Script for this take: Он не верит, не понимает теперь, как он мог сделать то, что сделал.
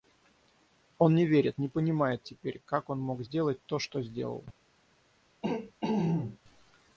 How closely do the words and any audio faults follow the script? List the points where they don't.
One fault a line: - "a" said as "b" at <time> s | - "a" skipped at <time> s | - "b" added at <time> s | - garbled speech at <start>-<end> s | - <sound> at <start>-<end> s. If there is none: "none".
- throat clearing at 5.4-6.4 s